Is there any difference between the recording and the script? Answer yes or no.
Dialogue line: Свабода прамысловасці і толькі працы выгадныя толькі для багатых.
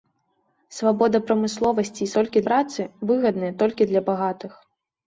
no